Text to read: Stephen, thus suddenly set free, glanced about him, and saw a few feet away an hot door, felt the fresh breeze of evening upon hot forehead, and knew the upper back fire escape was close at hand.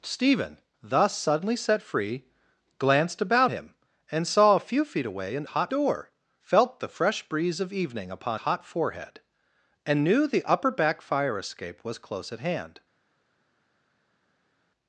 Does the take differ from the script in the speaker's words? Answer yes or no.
no